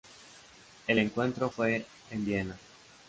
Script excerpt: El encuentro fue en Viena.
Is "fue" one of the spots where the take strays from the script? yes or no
no